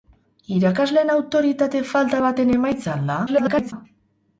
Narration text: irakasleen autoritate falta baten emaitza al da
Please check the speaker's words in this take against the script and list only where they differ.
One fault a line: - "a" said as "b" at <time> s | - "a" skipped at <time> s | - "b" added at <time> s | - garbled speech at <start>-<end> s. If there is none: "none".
- garbled speech at 3.3-3.7 s